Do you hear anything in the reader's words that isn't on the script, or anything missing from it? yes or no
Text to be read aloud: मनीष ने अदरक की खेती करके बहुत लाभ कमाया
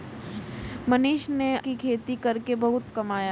yes